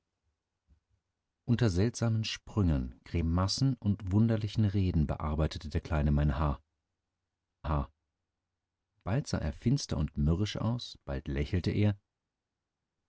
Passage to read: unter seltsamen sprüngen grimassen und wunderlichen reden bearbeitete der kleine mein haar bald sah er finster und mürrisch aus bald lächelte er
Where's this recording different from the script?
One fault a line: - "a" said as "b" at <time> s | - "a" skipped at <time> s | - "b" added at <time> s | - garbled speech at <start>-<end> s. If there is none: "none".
- "haar" added at 7.7 s